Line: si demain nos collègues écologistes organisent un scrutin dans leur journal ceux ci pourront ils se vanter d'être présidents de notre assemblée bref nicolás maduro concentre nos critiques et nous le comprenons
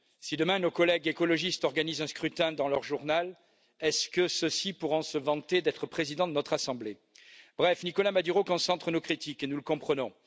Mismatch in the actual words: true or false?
false